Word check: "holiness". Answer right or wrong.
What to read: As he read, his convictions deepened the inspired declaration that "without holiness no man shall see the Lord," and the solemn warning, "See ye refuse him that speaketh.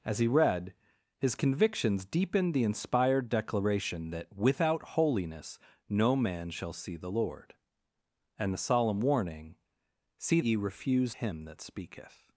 right